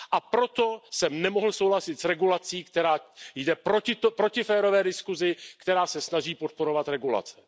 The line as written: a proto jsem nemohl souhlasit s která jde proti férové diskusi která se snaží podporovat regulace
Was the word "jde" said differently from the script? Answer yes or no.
no